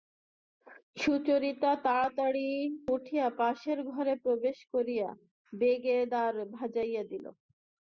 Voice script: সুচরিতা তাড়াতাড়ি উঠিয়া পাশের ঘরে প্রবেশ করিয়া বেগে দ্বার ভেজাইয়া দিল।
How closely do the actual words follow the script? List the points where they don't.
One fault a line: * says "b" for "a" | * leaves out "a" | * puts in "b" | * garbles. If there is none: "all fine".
all fine